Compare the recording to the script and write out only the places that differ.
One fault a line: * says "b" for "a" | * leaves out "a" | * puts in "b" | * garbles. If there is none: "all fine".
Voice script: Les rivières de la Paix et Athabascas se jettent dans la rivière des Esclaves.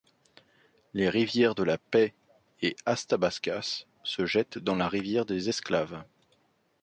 all fine